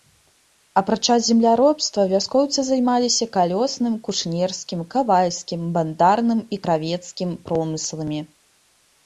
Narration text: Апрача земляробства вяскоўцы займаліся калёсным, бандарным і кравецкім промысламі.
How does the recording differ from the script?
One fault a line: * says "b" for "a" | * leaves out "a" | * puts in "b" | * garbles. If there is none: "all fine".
* puts in "кушнерскім кавальскім"